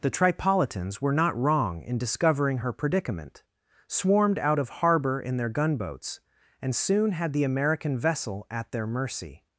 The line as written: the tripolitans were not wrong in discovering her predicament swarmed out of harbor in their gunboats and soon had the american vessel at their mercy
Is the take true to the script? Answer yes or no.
yes